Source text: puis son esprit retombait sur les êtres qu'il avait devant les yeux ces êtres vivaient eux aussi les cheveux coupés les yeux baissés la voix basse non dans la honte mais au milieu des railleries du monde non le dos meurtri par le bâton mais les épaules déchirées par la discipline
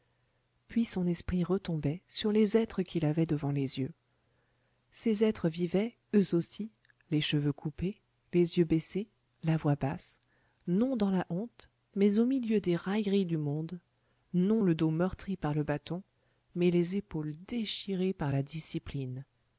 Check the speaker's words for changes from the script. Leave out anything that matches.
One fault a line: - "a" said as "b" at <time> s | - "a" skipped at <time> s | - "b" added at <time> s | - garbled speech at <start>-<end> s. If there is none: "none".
none